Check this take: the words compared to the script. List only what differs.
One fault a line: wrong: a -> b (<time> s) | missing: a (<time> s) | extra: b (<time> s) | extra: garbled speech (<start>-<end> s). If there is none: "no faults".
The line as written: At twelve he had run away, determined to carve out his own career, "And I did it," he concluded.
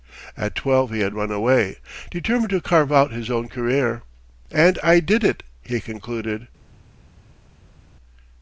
no faults